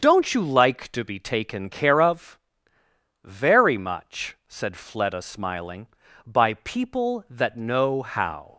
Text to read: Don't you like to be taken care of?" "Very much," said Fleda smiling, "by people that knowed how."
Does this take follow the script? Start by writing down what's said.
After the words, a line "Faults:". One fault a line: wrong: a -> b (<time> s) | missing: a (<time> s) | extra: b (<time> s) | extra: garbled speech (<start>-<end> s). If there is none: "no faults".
Don't you like to be taken care of?" "Very much," said Fleda smiling, "by people that know how."
Faults:
wrong: knowed -> know (7.5 s)